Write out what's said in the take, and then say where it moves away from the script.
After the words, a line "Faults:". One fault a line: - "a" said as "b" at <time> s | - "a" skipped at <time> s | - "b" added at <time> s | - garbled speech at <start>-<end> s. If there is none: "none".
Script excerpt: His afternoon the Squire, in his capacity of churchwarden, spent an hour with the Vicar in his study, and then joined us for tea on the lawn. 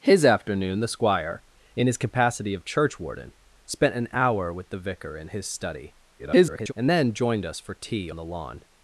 His afternoon the Squire, in his capacity of churchwarden, spent an hour with the Vicar in his study, [garbled] and then joined us for tea the lawn.
Faults:
- garbled speech at 6.2-6.7 s
- "on" skipped at 8.1 s